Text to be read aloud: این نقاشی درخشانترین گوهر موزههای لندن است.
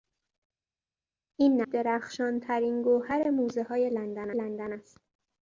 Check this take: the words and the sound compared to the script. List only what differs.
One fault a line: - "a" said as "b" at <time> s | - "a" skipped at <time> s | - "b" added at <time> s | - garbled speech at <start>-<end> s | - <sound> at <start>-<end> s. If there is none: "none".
- "نقاشی" skipped at 1.6 s
- "لندن" added at 4.3 s